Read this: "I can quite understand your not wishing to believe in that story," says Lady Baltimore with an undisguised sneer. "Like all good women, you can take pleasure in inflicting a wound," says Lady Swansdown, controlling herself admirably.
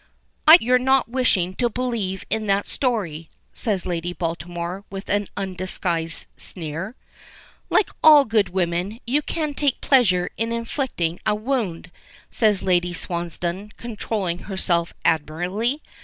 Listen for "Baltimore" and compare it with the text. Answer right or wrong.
right